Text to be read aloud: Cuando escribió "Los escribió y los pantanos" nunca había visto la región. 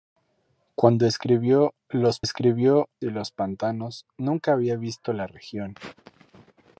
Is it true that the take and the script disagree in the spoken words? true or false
false